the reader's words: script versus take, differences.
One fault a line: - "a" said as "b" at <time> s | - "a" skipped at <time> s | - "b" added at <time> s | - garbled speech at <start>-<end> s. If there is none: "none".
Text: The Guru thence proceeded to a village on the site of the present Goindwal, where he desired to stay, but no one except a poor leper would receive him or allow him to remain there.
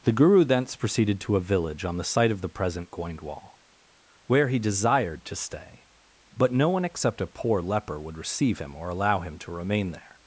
none